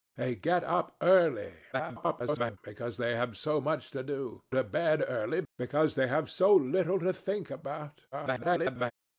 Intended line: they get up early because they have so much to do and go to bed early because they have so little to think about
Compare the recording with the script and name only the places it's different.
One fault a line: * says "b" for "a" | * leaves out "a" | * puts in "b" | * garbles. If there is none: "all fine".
* garbles
* leaves out "and go"
* garbles